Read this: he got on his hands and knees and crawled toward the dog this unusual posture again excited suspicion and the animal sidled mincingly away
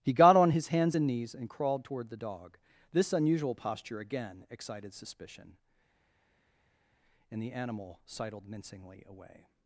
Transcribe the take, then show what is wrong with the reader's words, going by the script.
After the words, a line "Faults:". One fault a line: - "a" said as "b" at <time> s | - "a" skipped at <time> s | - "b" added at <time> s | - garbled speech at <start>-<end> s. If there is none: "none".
he got on his hands and knees and crawled toward the dog this unusual posture again excited suspicion and the animal sidled mincingly away
Faults:
none